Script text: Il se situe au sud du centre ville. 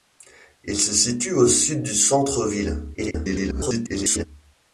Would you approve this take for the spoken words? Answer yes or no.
no